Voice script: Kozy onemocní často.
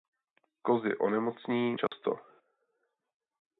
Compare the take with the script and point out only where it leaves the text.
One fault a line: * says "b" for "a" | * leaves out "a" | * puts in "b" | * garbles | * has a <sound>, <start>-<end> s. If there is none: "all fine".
* has a dropout, 1.9-1.9 s